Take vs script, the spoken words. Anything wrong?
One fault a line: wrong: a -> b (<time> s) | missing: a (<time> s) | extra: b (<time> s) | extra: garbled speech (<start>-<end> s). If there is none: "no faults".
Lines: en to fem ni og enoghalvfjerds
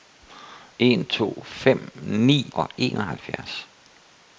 no faults